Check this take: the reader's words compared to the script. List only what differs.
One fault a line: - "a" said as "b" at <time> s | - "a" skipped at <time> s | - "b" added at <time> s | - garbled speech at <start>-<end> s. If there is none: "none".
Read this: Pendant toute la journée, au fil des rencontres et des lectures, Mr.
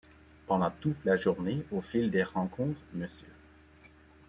- "et des lectures" skipped at 2.8 s